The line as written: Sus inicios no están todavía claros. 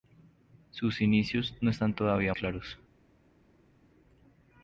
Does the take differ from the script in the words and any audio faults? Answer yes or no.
no